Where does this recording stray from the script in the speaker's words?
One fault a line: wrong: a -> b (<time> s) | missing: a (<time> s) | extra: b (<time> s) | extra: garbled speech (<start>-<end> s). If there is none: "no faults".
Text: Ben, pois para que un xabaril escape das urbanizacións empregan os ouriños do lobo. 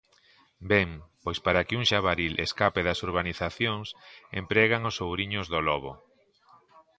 no faults